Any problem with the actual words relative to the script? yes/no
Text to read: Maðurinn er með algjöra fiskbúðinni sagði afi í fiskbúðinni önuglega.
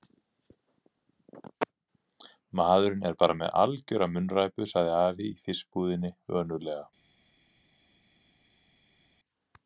yes